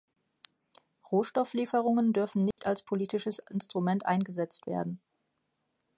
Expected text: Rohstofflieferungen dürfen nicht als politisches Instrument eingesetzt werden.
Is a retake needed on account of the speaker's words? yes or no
no